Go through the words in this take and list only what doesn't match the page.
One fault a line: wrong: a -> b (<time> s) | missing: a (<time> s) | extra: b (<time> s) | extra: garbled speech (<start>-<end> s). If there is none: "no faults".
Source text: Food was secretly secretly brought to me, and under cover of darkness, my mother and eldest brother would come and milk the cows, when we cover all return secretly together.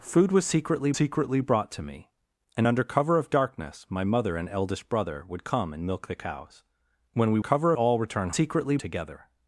no faults